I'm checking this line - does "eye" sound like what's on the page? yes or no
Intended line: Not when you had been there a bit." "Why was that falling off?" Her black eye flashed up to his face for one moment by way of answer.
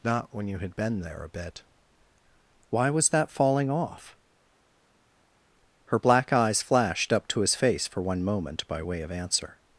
no